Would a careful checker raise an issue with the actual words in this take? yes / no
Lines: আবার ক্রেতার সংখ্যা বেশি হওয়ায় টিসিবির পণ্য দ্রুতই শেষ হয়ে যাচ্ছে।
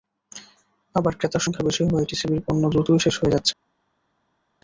no